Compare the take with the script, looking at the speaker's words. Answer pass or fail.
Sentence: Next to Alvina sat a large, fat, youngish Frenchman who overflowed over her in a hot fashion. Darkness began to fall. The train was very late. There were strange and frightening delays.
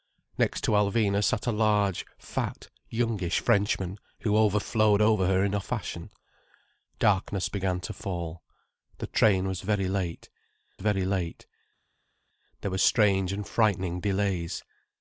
fail